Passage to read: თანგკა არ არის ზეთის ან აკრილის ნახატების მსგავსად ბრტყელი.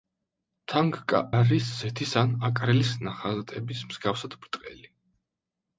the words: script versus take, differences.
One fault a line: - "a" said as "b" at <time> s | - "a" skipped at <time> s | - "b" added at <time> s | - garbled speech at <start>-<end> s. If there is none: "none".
- "არ" skipped at 1.2 s